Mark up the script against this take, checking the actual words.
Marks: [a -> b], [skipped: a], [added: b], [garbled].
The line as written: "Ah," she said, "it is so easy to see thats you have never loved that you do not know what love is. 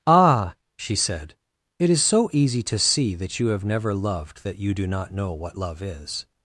"Ah," she said, "it is so easy to see [thats -> that] you have never loved that you do not know what love is.